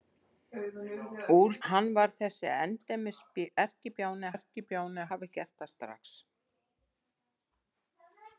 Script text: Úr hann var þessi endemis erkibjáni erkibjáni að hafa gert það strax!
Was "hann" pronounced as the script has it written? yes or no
yes